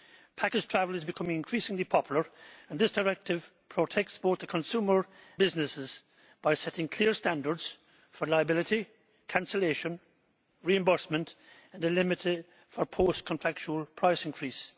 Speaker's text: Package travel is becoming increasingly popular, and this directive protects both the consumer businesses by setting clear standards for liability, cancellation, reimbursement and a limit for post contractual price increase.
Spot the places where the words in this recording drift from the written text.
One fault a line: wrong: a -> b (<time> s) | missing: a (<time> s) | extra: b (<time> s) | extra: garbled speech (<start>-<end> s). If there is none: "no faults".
no faults